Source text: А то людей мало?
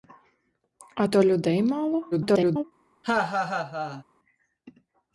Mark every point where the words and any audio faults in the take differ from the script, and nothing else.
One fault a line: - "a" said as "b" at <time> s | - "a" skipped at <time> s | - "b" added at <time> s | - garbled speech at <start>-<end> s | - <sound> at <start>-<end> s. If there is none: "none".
- garbled speech at 2.1-2.6 s
- laugh at 3.0-4.0 s